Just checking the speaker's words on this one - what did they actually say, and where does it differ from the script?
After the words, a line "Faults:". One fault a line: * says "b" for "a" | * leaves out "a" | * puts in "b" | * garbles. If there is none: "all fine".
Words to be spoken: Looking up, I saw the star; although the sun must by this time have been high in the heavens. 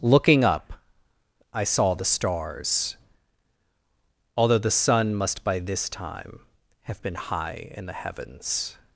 Looking up, I saw the stars; although the sun must by this time have been high in the heavens.
Faults:
* says "stars" for "star"